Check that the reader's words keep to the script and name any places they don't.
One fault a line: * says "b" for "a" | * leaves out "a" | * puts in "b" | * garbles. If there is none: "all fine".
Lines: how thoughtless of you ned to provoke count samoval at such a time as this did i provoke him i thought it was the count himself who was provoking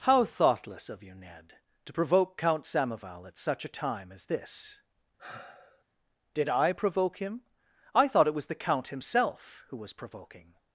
all fine